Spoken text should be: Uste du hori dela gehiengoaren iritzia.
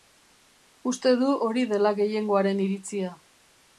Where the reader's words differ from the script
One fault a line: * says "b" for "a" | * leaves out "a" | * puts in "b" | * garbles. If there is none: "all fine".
all fine